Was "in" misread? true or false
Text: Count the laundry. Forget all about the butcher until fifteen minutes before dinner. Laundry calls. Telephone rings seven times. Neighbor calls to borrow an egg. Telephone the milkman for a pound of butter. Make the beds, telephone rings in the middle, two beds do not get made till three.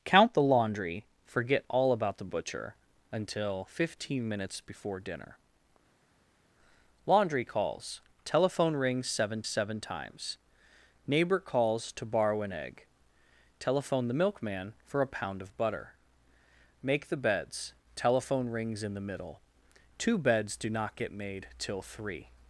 false